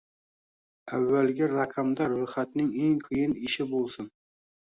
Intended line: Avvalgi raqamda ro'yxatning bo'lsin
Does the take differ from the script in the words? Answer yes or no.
yes